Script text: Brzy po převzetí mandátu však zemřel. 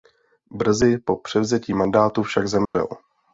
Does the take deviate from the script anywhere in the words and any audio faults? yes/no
yes